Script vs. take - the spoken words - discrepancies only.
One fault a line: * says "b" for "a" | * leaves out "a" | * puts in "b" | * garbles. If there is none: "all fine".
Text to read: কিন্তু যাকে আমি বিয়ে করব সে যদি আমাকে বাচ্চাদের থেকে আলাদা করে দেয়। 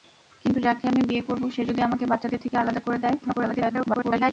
* garbles